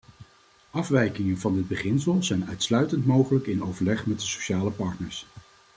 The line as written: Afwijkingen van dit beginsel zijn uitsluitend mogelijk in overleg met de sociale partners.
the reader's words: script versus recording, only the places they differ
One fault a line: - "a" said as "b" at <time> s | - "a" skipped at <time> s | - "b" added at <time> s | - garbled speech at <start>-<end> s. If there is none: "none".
none